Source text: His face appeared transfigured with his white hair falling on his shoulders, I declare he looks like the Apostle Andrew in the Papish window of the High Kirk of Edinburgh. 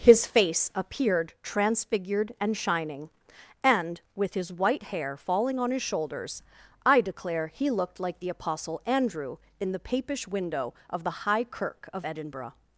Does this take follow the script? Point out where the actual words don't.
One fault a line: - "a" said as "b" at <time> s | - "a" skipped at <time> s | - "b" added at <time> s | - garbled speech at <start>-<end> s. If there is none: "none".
- "and shining and" added at 2.4 s
- "looks" said as "looked" at 7.7 s